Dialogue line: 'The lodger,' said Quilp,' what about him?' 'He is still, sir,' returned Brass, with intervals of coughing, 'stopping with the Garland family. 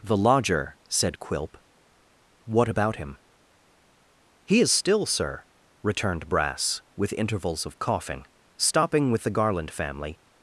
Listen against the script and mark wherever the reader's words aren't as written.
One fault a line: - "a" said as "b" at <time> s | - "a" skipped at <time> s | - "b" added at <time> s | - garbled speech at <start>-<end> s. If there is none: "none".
none